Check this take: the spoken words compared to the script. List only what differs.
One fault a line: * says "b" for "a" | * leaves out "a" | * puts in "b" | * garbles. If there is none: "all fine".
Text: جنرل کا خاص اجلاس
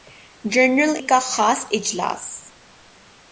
all fine